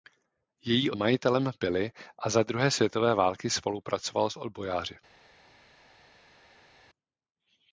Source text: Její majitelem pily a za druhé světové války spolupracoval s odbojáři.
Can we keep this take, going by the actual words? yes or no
yes